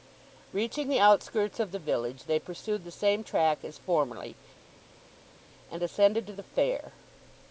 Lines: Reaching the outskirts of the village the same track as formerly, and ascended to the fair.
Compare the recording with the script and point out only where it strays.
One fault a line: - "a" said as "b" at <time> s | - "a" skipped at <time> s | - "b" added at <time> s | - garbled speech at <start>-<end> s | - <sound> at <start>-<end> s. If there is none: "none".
- "they pursued" added at 2.2 s